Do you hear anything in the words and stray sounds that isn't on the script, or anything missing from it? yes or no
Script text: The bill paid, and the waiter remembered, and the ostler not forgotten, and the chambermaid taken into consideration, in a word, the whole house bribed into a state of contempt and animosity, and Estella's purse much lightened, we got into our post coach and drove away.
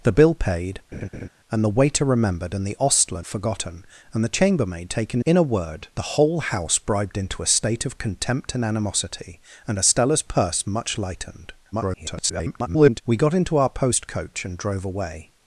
yes